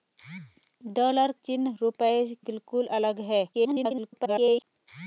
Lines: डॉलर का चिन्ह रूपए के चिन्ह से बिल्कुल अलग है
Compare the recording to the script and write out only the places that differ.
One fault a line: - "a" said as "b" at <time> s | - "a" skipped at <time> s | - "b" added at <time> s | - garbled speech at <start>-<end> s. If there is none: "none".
- "का" skipped at 1.3 s
- "के चिन्ह से" skipped at 2.1 s
- garbled speech at 3.5-4.6 s